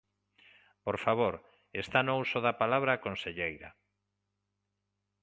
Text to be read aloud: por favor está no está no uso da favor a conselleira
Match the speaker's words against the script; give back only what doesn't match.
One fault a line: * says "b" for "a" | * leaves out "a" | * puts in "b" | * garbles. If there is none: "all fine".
* leaves out "está no"
* says "palabra" for "favor"